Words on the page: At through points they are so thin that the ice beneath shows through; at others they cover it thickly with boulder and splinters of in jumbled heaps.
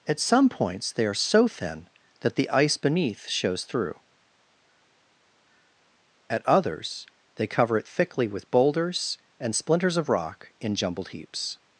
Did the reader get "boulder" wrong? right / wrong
wrong